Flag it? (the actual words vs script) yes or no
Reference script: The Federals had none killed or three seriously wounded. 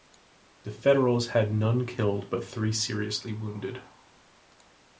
yes